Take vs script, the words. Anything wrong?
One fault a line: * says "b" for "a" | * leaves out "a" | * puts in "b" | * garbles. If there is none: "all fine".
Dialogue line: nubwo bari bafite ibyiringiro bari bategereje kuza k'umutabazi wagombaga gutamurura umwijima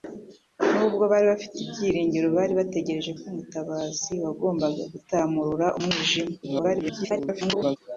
* leaves out "kuza"
* garbles